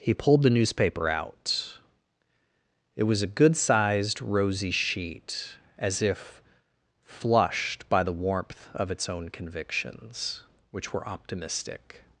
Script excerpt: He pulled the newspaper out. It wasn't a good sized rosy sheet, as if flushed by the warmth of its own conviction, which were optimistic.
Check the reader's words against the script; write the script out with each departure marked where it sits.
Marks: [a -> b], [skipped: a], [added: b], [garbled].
He pulled the newspaper out. It [wasn't -> was] a good sized rosy sheet, as if flushed by the warmth of its own [conviction, -> convictions] which were optimistic.